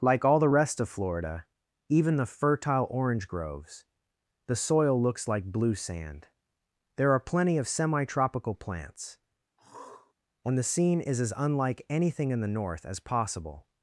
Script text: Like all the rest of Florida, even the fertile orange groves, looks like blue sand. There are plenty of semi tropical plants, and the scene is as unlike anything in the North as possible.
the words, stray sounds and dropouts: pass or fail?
fail